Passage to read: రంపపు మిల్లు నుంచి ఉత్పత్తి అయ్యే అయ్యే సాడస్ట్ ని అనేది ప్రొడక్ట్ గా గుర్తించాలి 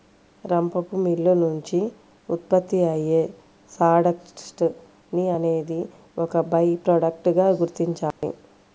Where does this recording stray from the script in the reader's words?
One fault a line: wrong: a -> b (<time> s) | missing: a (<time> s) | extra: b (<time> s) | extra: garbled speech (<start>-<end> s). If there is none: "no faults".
missing: అయ్యే (3.2 s)
extra: ఒక బై (6.2 s)